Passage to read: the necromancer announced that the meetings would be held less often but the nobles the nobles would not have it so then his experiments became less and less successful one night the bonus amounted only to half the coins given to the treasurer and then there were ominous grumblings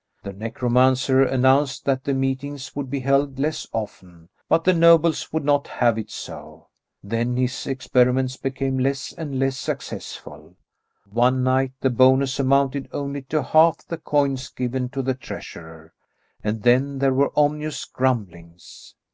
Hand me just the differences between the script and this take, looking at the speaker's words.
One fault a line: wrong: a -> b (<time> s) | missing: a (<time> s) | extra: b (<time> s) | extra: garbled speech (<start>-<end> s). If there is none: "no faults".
missing: the nobles (5.3 s)